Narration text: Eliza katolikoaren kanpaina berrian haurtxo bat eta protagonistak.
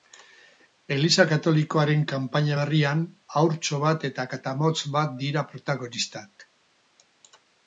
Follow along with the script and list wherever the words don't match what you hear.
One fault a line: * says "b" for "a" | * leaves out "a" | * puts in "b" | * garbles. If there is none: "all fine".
* puts in "katamotz bat dira"